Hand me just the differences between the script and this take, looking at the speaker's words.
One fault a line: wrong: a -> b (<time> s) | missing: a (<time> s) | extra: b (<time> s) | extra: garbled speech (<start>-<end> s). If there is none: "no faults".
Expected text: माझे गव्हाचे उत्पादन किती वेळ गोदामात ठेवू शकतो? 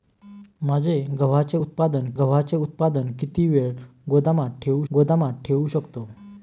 extra: गव्हाचे उत्पादन (2.2 s)
extra: गोदामात ठेवू (4.9 s)